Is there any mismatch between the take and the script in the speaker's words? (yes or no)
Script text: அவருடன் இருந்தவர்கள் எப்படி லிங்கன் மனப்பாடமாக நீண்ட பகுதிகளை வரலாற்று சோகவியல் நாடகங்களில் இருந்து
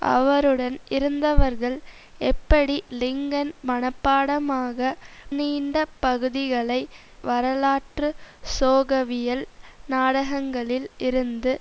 no